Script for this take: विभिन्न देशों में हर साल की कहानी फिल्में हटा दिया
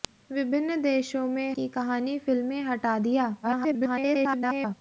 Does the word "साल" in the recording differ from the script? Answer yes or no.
yes